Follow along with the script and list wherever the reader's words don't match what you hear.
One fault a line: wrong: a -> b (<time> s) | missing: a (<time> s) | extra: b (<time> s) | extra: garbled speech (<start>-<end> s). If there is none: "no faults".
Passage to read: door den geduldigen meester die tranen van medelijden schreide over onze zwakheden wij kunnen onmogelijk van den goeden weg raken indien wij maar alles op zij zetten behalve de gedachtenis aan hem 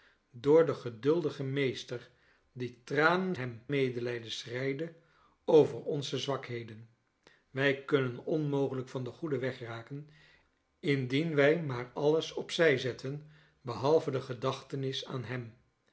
wrong: van -> hem (3.3 s)